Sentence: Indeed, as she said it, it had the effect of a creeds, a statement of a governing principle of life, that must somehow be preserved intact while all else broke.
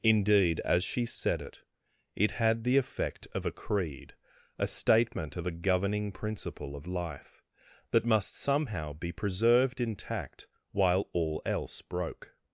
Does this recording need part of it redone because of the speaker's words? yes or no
yes